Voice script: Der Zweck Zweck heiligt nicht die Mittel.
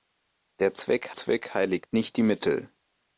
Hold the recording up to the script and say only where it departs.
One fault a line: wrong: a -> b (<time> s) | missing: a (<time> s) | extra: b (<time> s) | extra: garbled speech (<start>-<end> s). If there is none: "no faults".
no faults